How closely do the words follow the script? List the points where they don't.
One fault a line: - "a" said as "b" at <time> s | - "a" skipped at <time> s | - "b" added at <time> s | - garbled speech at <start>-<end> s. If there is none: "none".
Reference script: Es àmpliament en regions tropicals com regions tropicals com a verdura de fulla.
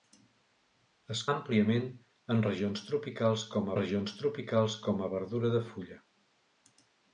none